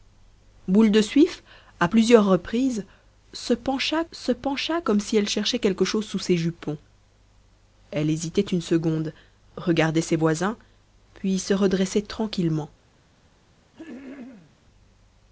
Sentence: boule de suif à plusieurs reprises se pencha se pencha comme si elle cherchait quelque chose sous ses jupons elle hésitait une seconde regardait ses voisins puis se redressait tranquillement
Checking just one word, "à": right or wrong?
right